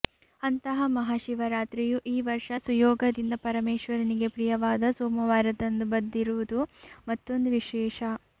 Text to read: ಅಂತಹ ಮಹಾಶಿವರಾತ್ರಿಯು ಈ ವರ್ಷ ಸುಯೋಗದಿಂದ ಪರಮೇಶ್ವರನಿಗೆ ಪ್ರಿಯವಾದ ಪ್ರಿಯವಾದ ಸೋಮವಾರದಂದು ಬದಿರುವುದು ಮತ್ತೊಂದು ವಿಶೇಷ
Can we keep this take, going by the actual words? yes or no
no